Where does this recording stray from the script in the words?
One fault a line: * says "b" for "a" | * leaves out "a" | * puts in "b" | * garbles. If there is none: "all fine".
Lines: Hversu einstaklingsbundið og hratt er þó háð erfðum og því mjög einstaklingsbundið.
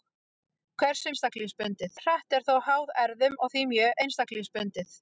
all fine